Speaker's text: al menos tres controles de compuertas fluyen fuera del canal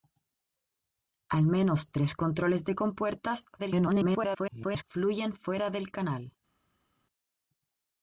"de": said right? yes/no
yes